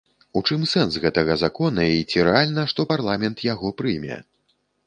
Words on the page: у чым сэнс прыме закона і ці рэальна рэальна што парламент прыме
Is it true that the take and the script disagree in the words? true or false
true